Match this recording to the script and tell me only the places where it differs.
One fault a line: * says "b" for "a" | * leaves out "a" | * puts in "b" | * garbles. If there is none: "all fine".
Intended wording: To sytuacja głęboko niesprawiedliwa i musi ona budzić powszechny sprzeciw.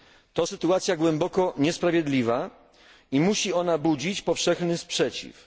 all fine